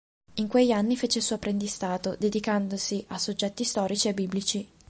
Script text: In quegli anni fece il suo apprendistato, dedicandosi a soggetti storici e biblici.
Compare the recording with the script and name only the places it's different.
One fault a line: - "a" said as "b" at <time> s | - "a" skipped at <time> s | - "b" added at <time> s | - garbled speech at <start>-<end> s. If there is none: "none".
none